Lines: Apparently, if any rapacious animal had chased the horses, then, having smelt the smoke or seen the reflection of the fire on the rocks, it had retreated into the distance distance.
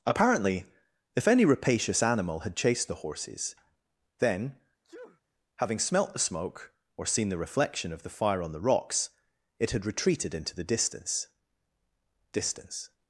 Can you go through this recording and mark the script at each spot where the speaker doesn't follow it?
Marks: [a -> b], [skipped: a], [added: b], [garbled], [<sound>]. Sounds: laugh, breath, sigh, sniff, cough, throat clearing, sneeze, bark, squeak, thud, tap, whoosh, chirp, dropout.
Apparently, if any rapacious animal had chased the horses, then, [sneeze] having smelt the smoke or seen the reflection of the fire on the rocks, it had retreated into the distance distance.